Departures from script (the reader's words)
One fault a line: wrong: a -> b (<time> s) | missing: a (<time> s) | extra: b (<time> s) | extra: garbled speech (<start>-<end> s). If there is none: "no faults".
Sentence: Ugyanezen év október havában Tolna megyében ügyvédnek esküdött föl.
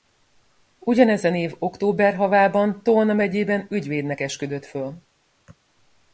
no faults